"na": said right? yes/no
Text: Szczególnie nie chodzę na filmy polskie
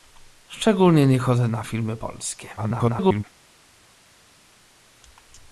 yes